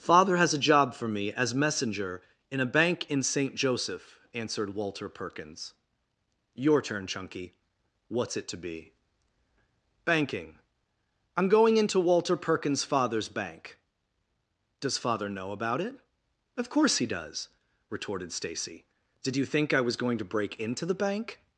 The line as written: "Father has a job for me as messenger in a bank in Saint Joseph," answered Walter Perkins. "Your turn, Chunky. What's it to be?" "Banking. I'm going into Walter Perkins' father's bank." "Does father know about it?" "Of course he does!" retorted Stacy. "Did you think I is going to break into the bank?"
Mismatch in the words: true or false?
true